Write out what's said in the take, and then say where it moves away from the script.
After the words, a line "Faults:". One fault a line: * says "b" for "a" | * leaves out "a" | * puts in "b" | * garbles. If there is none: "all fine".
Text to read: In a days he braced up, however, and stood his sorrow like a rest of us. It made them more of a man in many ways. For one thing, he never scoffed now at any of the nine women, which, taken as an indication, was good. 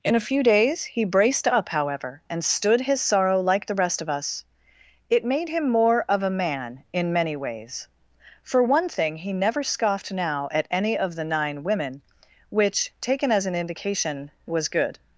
In a few days he braced up, however, and stood his sorrow like the rest of us. It made him more of a man in many ways. For one thing, he never scoffed now at any of the nine women, which, taken as an indication, was good.
Faults:
* puts in "few"
* says "the" for "a"
* says "him" for "them"